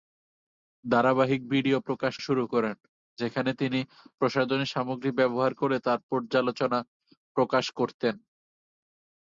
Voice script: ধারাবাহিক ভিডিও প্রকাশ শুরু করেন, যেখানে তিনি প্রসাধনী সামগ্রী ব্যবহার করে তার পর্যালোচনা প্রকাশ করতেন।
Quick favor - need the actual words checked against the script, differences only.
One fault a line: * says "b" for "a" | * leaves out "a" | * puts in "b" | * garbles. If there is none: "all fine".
all fine